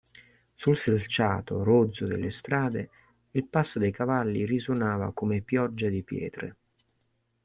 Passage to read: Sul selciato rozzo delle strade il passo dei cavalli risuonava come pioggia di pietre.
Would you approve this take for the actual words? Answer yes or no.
yes